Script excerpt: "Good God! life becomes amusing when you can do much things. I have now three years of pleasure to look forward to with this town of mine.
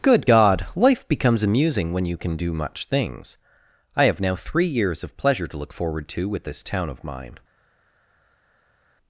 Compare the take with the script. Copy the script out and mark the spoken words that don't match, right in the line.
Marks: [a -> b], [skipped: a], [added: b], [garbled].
"Good God! life becomes amusing when you can do much things. I have now three years of pleasure to look forward to with this town of mine.